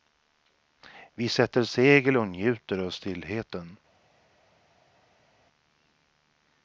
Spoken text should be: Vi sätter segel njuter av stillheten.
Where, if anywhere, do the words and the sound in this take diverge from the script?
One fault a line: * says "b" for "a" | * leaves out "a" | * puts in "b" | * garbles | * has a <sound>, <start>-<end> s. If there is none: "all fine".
* puts in "och"